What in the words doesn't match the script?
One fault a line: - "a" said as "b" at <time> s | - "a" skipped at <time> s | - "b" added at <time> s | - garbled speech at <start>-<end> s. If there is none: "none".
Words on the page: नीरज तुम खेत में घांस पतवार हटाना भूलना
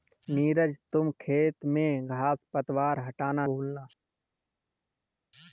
none